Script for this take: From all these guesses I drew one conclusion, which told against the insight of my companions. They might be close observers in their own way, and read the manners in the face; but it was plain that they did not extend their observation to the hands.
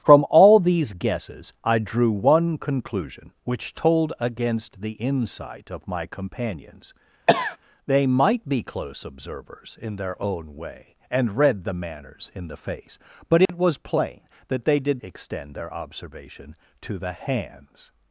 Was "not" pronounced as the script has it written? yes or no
no